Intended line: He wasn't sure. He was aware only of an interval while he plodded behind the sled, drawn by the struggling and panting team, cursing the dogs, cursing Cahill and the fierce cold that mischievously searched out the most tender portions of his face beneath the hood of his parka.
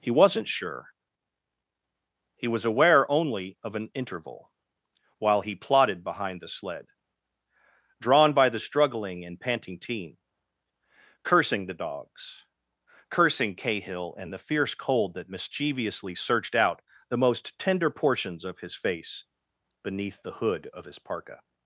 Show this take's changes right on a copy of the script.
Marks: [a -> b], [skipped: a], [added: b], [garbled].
He wasn't sure. He was aware only of an interval while he plodded behind the sled, drawn by the struggling and panting team, cursing the dogs, cursing Cahill and the fierce cold that mischievously searched out the most tender portions of his face beneath the hood of his parka.